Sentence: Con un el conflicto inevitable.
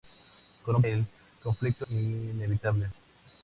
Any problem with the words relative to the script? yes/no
no